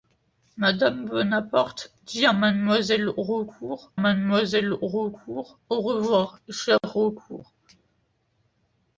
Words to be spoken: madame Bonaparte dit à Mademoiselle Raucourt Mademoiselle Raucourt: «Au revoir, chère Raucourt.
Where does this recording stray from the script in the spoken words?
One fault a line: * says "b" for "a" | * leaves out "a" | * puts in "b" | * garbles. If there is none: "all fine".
all fine